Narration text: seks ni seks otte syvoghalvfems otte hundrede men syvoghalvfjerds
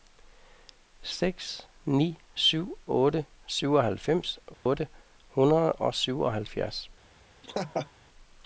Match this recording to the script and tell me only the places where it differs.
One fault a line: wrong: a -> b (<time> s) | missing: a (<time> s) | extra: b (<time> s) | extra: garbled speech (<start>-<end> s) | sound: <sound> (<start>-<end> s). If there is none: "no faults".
wrong: seks -> syv (2.4 s)
sound: dropout (4.5-4.7 s)
wrong: men -> og (5.7 s)
sound: laugh (7.4-7.9 s)